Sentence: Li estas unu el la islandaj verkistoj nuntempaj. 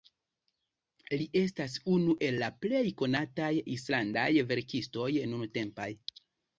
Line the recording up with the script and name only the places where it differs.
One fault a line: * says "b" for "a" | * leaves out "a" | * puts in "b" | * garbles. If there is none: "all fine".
* puts in "plej konataj"